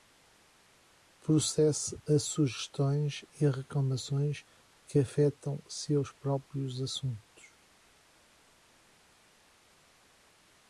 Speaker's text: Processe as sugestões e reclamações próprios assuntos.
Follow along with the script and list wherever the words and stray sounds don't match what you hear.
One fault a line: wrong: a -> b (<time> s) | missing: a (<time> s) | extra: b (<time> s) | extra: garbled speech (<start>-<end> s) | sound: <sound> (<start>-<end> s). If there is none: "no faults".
extra: que afetam seus (4.9 s)